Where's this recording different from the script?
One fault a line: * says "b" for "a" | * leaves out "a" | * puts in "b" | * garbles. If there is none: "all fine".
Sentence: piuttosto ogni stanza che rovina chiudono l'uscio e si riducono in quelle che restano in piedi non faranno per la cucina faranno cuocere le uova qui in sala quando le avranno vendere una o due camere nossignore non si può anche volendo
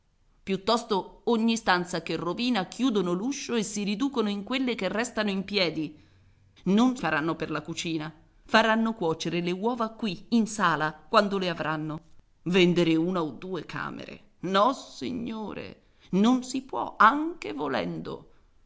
all fine